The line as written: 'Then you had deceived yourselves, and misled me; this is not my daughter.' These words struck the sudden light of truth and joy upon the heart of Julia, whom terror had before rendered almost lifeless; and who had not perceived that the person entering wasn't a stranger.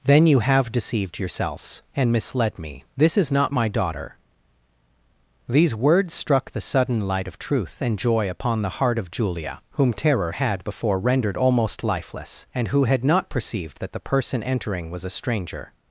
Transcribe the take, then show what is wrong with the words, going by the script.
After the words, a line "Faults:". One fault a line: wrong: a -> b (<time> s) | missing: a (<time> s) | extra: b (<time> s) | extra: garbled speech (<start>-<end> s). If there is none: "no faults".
'Then you have deceived yourselves, and misled me; this is not my daughter.' These words struck the sudden light of truth and joy upon the heart of Julia, whom terror had before rendered almost lifeless; and who had not perceived that the person entering was a stranger.
Faults:
wrong: had -> have (0.4 s)
wrong: wasn't -> was (14.9 s)